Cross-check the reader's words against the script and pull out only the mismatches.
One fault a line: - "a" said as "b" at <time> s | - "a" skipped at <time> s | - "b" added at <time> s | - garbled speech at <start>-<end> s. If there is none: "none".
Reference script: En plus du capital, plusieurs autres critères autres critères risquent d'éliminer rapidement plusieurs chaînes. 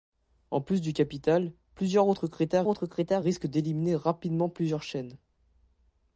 none